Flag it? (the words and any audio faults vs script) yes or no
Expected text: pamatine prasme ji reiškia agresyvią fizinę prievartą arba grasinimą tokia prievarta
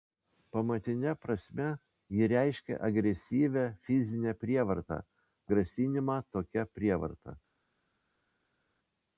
yes